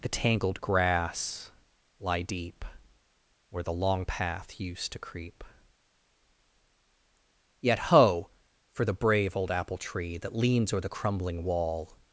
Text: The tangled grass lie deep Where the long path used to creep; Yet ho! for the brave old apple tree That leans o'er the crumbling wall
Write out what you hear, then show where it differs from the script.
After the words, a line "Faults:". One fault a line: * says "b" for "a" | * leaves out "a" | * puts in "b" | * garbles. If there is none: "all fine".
The tangled grass lie deep Where the long path used to creep; Yet ho! for the brave old apple tree That leans o'er the crumbling wall
Faults:
all fine